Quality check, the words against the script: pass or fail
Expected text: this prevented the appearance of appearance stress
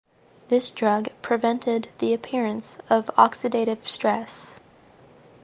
fail